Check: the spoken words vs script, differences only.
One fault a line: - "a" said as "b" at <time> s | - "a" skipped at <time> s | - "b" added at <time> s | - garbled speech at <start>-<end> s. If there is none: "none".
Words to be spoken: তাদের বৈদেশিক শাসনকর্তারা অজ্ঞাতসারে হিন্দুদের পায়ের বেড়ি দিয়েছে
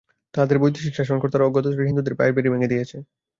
- "ভেঙে" added at 2.5 s